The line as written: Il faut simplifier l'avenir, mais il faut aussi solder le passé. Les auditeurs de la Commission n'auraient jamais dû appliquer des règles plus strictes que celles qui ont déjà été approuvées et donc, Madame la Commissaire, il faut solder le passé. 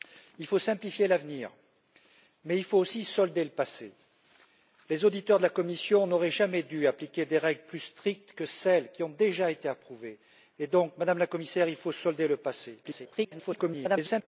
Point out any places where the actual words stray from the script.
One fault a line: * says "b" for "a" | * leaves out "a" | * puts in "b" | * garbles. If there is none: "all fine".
* garbles